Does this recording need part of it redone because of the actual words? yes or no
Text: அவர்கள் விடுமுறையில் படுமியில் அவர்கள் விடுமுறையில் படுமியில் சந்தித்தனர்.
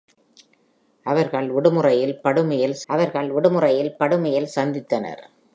no